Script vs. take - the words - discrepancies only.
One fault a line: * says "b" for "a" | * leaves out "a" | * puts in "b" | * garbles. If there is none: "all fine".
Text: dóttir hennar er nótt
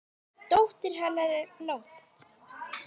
all fine